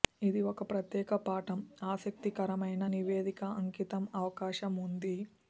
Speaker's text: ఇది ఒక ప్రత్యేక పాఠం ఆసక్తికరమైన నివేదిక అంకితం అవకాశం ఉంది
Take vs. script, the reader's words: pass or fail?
pass